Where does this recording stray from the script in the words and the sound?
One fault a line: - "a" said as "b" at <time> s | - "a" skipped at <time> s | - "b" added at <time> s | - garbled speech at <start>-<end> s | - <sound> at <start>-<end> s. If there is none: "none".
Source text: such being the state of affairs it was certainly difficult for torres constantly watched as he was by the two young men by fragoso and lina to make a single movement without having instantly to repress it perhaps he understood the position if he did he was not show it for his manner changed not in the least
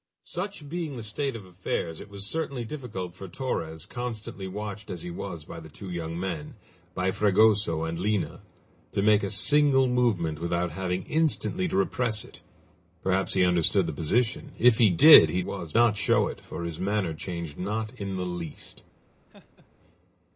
- laugh at 19.3-19.7 s